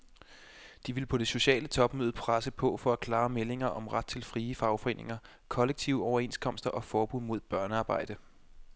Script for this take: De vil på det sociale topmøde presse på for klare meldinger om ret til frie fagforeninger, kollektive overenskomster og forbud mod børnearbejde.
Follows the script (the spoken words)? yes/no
yes